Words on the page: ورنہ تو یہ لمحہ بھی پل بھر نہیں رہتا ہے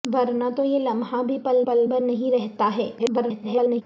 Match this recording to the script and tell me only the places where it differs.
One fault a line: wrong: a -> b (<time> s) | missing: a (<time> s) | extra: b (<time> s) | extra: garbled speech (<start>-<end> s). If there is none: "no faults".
extra: پل (1.6 s)
extra: garbled speech (3.0-3.8 s)